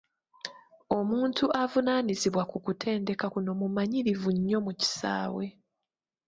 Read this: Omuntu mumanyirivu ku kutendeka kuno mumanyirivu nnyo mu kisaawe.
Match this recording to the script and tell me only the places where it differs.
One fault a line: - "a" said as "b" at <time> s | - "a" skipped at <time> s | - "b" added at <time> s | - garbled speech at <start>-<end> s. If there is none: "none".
- "mumanyirivu" said as "avunaanyizibwa" at 1.6 s